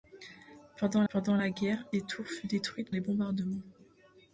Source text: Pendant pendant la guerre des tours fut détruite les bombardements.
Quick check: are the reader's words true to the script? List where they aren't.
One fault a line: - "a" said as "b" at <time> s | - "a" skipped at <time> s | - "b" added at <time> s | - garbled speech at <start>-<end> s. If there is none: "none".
none